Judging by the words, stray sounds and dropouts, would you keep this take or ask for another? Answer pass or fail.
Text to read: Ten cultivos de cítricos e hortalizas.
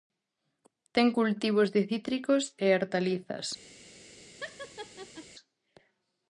fail